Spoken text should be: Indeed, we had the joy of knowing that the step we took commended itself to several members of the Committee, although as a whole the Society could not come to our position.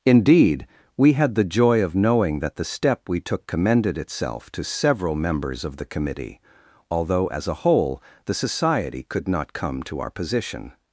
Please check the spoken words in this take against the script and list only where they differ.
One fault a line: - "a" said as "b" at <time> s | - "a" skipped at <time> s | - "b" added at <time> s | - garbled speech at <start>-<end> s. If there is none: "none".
none